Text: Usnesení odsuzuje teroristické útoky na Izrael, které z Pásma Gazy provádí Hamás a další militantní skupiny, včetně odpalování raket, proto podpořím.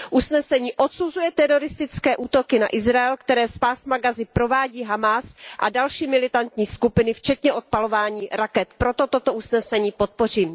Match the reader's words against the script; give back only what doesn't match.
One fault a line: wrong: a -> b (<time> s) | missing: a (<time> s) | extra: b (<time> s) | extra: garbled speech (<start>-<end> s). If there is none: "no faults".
extra: toto usnesení (9.1 s)